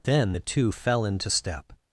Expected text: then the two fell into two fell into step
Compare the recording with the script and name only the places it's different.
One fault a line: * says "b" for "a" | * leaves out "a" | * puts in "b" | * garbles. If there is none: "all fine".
* leaves out "two fell into"